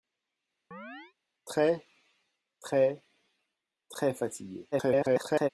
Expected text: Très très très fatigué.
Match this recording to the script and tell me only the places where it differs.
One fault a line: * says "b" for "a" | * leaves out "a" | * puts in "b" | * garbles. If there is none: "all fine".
* garbles